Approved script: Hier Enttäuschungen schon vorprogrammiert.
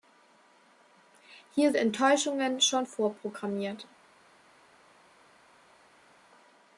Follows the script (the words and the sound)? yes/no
yes